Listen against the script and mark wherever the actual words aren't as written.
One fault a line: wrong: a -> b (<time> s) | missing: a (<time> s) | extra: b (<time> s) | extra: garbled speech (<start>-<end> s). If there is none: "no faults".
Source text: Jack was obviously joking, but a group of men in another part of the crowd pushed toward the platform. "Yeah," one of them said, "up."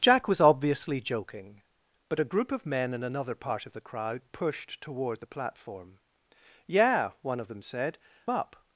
no faults